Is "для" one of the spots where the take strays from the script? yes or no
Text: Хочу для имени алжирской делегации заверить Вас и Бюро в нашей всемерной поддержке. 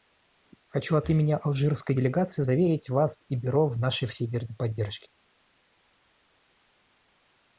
yes